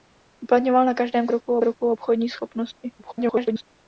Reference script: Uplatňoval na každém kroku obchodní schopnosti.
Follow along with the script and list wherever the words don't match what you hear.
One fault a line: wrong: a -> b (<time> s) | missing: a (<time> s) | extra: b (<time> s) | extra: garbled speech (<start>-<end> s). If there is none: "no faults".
extra: kroku (1.6 s)
extra: garbled speech (3.0-3.7 s)